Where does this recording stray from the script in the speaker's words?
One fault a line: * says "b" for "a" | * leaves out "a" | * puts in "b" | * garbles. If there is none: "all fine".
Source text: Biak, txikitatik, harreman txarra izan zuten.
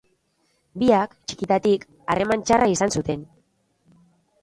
all fine